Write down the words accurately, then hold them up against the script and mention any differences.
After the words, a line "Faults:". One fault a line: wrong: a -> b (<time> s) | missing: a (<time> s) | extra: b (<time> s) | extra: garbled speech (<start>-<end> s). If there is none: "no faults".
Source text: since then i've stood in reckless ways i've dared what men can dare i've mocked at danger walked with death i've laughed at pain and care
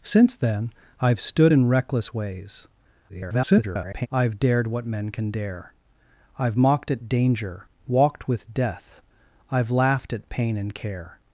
since then i've stood in reckless ways [garbled] i've dared what men can dare i've mocked at danger walked with death i've laughed at pain and care
Faults:
extra: garbled speech (3.1-4.1 s)